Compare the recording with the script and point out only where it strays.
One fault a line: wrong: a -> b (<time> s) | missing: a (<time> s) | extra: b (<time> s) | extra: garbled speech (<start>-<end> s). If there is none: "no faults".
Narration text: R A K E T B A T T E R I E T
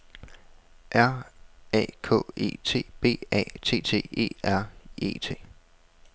missing: I (4.7 s)